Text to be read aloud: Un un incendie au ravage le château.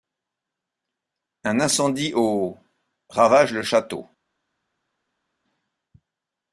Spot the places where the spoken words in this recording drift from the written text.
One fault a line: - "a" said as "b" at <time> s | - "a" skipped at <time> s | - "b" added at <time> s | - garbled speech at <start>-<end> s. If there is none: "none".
- "un" skipped at 1.6 s